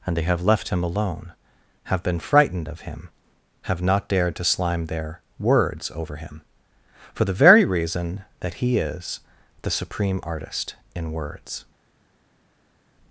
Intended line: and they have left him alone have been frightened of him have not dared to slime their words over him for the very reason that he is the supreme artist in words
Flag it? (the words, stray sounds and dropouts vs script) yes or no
no